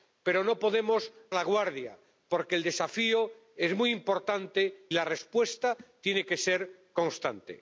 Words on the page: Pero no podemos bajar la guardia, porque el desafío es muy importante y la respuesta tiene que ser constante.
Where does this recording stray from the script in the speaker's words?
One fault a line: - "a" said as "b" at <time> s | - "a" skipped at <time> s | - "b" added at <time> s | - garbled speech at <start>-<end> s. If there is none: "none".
- "bajar" skipped at 1.1 s
- "y" skipped at 4.9 s